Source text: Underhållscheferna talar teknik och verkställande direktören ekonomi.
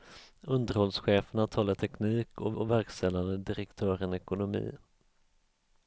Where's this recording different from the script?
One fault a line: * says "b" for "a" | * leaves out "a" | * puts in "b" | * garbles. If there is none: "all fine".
* puts in "och"